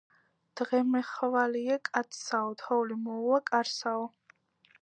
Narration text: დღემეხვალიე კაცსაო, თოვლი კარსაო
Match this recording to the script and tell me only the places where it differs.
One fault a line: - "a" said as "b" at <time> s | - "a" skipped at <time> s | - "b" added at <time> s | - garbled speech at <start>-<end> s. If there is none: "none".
- "მოუვა" added at 3.0 s